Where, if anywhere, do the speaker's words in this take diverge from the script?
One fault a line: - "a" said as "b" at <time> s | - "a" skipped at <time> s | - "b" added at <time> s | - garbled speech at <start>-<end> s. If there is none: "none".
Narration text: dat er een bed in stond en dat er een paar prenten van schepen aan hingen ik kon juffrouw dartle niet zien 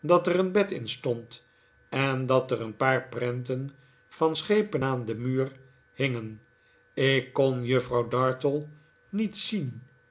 - "den muur" added at 5.0 s